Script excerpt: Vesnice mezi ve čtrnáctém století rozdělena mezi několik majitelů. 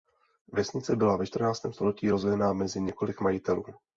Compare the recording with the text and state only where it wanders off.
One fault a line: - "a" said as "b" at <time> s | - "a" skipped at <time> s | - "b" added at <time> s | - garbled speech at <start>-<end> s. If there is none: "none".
- "mezi" said as "byla" at 0.9 s